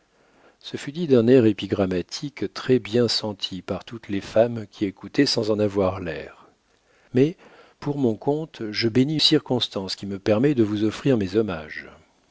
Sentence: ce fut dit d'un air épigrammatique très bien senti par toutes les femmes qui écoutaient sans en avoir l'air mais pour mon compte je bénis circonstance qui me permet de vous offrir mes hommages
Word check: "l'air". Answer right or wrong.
right